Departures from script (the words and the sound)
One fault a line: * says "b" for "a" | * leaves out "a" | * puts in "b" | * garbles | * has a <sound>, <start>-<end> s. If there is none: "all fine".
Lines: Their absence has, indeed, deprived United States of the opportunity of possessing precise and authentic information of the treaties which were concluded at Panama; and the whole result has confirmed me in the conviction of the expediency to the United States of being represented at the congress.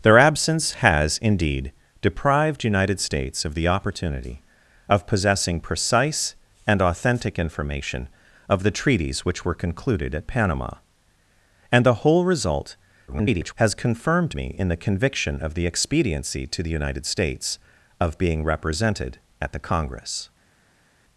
* garbles